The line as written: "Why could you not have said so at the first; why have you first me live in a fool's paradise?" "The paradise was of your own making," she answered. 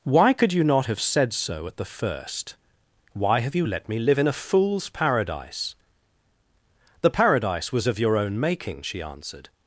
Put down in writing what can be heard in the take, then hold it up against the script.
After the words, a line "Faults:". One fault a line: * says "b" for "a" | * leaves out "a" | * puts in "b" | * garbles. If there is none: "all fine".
"Why could you not have said so at the first; why have you let me live in a fool's paradise?" "The paradise was of your own making," she answered.
Faults:
* says "let" for "first"